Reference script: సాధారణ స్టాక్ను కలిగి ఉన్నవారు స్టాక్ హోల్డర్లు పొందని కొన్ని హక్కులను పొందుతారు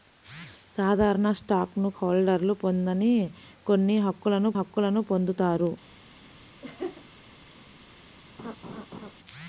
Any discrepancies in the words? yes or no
yes